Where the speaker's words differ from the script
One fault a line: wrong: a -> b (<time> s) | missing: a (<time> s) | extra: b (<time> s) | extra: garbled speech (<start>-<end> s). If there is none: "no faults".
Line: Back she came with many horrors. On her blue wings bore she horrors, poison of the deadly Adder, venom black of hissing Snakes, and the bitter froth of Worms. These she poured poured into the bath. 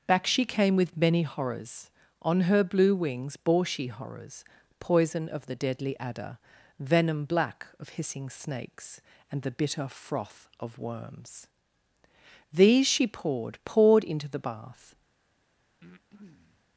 no faults